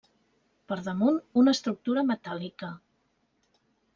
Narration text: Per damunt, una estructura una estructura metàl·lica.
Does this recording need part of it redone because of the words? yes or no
yes